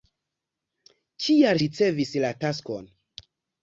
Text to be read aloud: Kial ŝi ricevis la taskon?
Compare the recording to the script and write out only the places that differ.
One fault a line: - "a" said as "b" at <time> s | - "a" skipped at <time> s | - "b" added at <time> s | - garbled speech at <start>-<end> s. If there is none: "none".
- "ŝi" skipped at 1.6 s